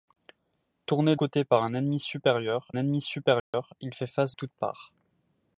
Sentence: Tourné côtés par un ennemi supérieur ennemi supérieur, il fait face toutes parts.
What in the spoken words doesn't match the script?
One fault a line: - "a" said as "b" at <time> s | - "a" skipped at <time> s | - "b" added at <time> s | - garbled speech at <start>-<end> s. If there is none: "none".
none